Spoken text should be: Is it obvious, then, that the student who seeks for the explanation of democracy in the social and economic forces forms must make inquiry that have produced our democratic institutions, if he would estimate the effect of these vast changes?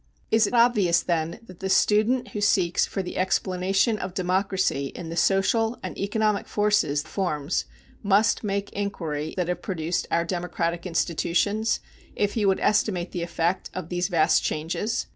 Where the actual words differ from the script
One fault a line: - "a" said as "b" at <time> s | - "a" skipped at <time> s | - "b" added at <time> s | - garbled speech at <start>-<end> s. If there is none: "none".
none